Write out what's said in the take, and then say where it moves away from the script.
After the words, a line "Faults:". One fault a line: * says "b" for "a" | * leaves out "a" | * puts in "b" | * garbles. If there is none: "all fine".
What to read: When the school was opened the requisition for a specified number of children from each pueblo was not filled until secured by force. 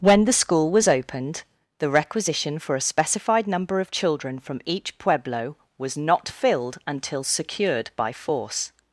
When the school was opened the requisition for a specified number of children from each pueblo was not filled until secured by force.
Faults:
all fine